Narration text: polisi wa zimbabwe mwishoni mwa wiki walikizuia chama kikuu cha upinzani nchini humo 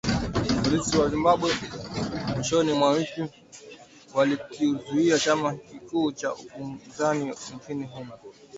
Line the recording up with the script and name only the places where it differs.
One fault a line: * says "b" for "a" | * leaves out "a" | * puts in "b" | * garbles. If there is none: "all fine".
all fine